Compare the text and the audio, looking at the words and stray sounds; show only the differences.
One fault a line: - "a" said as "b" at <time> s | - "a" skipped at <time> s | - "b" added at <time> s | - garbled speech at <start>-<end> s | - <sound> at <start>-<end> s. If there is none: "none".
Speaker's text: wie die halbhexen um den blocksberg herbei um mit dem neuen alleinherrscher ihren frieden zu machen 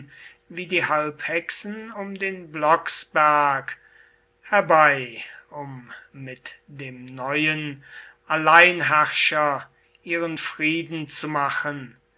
none